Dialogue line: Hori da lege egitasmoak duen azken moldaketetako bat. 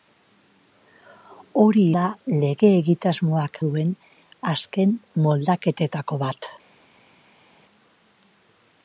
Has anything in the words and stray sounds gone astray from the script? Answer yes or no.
no